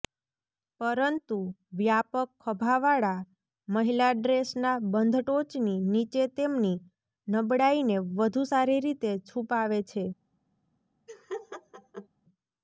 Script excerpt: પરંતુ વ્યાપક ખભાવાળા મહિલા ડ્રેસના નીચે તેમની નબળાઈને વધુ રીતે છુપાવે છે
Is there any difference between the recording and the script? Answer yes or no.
yes